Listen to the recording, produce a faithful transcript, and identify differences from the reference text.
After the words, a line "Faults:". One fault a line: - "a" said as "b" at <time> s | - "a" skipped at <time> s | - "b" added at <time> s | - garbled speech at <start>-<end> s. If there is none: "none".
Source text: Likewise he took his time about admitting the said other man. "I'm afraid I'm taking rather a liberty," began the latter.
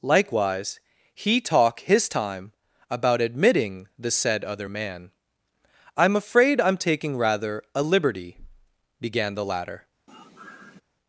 Likewise he talk his time about admitting the said other man. "I'm afraid I'm taking rather a liberty," began the latter.
Faults:
- "took" said as "talk" at 1.4 s